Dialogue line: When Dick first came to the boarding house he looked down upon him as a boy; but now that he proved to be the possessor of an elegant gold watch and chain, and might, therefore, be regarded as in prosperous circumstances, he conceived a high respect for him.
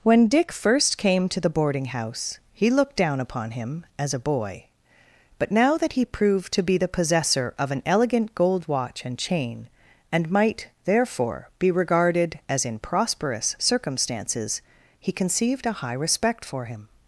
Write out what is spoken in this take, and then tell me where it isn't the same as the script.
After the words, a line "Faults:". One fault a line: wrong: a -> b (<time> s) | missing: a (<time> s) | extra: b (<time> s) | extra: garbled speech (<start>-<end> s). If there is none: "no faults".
When Dick first came to the boarding house he looked down upon him as a boy; but now that he proved to be the possessor of an elegant gold watch and chain, and might, therefore, be regarded as in prosperous circumstances, he conceived a high respect for him.
Faults:
no faults